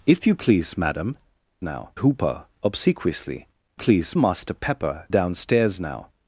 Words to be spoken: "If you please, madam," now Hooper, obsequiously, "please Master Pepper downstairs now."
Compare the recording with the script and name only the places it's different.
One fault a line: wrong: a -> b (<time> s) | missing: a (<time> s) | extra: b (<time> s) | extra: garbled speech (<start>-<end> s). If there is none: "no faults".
no faults